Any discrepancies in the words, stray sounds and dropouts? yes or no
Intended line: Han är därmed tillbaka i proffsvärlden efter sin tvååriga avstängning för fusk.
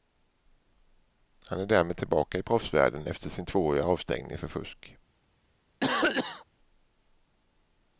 yes